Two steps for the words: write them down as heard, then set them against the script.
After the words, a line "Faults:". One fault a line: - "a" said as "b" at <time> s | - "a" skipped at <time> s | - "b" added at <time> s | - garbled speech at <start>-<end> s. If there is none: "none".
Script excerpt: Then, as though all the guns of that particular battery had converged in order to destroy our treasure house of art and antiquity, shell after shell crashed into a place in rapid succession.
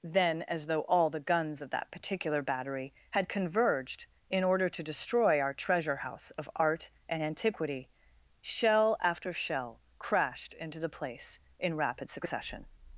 Then, as though all the guns of that particular battery had converged in order to destroy our treasure house of art and antiquity, shell after shell crashed into the place in rapid succession.
Faults:
- "a" said as "the" at 10.8 s